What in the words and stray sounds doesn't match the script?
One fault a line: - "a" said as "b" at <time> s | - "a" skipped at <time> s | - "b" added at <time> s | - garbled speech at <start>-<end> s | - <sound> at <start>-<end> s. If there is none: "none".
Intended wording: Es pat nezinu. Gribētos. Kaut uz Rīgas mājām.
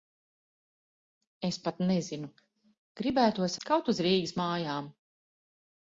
none